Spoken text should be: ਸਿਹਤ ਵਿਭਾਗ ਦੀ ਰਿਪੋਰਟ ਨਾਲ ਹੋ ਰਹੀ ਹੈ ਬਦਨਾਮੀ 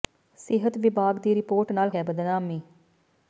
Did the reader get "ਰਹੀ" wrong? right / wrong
wrong